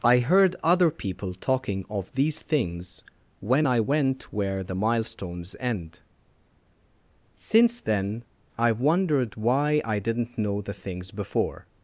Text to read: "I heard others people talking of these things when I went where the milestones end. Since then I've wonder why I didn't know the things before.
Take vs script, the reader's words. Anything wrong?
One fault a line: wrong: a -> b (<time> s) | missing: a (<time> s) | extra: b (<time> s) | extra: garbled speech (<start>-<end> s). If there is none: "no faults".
wrong: others -> other (0.6 s)
wrong: wonder -> wondered (8.8 s)